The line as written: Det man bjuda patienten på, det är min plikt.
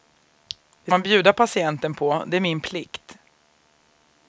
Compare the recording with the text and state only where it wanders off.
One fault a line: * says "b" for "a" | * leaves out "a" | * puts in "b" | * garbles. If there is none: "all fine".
all fine